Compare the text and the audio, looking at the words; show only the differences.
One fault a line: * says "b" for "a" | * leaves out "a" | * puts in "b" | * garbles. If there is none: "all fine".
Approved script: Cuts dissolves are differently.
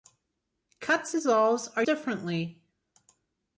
all fine